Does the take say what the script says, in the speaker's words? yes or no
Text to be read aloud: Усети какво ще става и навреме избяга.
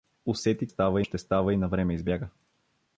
no